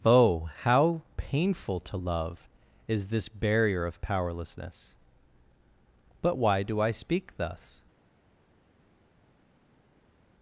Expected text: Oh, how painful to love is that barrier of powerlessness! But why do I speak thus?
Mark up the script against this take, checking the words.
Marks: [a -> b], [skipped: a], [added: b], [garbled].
Oh, how painful to love is [that -> this] barrier of powerlessness! But why do I speak thus?